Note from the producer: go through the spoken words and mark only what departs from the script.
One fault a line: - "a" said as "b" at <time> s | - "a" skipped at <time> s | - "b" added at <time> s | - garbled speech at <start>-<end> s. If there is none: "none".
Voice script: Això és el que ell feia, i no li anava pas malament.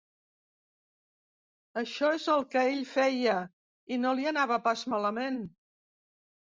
none